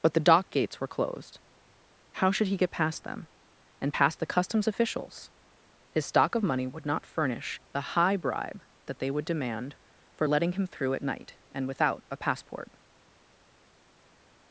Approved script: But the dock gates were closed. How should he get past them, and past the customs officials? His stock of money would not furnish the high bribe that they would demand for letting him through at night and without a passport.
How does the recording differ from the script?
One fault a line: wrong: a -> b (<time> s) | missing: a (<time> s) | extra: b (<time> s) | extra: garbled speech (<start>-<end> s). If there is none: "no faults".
no faults